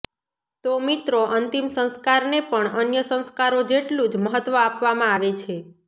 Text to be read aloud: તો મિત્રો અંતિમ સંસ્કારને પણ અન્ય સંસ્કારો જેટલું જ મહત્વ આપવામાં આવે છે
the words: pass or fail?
pass